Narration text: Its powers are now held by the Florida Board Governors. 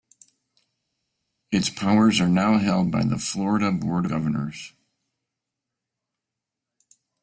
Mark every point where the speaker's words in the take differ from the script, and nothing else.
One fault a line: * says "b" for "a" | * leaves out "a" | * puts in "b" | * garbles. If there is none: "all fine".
all fine